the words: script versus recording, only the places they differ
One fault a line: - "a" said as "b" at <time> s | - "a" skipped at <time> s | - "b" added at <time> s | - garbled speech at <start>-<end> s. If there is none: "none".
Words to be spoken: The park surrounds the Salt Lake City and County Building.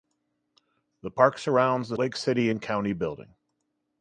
- "Salt" skipped at 2.0 s